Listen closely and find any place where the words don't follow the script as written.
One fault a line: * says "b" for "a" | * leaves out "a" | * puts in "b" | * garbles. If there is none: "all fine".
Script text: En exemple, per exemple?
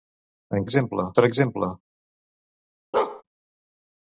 all fine